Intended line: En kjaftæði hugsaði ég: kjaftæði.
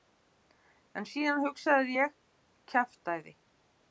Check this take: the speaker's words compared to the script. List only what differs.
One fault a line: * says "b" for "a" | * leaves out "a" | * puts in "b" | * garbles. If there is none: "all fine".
* says "síðan" for "kjaftæði"